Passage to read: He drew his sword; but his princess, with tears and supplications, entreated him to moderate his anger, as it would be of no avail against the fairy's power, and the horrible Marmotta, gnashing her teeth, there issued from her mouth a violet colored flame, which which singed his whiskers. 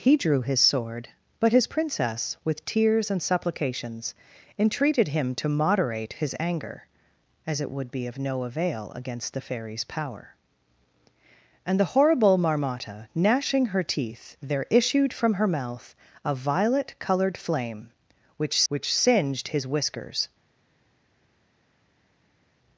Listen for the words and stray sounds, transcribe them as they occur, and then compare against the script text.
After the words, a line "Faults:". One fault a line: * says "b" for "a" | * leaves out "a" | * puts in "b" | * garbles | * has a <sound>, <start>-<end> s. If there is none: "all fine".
He drew his sword; but his princess, with tears and supplications, entreated him to moderate his anger, as it would be of no avail against the fairy's power, and the horrible Marmotta, gnashing her teeth, there issued from her mouth a violet colored flame, which which singed his whiskers.
Faults:
all fine